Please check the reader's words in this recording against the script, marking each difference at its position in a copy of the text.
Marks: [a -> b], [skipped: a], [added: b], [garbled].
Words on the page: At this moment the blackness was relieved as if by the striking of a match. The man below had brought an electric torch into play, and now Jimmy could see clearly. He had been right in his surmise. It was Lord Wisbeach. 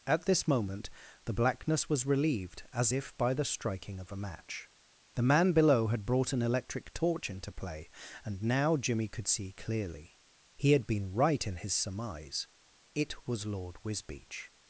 At this moment the blackness was relieved as if by the striking of a match. The man below had brought an electric torch into play, and now Jimmy could see clearly. He had been right in his surmise. It was Lord Wisbeach.